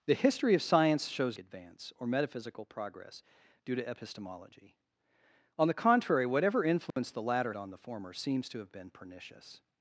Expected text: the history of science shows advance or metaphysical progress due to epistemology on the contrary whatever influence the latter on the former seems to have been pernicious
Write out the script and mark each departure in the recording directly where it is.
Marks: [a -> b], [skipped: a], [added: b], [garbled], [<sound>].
the history of science shows advance or metaphysical progress due to epistemology on the contrary whatever influence [dropout] the latter on the former seems to have been pernicious